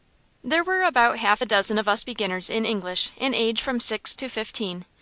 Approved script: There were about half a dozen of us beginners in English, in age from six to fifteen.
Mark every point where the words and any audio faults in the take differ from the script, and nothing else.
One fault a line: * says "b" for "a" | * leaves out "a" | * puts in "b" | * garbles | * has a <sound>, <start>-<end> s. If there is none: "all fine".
all fine